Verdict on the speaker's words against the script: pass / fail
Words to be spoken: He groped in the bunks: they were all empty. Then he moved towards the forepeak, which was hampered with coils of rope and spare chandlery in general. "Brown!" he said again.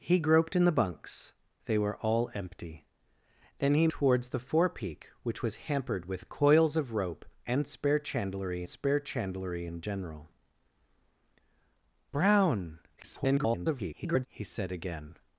fail